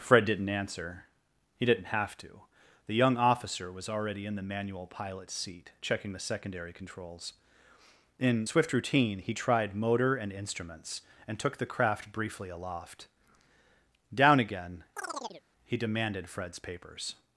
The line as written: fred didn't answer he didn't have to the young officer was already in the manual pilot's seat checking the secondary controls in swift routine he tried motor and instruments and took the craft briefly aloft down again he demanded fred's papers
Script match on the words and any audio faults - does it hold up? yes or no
no